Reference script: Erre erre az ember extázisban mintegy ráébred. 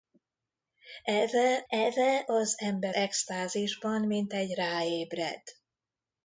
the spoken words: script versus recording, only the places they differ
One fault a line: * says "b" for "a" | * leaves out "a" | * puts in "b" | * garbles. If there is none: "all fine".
all fine